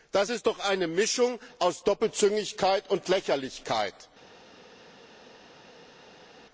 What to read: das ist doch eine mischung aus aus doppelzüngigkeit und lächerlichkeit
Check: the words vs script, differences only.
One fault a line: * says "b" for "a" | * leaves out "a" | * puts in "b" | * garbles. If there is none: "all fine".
* leaves out "aus"